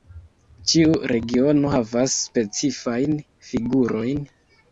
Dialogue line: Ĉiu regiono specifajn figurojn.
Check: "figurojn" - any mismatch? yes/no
no